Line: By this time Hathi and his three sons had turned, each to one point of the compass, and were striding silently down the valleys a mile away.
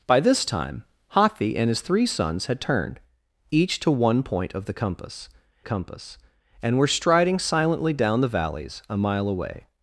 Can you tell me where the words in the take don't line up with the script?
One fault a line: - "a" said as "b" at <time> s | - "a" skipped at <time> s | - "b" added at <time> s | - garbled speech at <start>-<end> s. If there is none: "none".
- "compass" added at 5.6 s